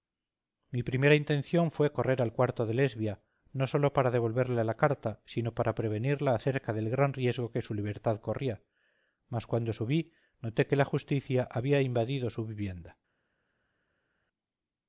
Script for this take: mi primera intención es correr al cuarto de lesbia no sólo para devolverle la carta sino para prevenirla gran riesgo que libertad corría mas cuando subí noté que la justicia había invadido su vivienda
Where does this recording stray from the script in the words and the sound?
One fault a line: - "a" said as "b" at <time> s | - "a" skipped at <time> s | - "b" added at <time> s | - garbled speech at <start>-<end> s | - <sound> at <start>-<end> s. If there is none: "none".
- "es" said as "fue" at 1.7 s
- "acerca del" added at 6.3 s
- "su" added at 7.6 s